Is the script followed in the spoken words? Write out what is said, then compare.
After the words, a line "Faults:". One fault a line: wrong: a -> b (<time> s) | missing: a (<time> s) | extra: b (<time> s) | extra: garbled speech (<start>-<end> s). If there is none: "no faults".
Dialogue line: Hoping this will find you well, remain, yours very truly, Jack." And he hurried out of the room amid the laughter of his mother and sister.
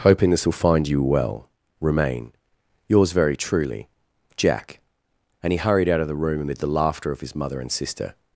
Hoping this will find you well, remain, yours very truly, Jack." And he hurried out of the room amid the laughter of his mother and sister.
Faults:
no faults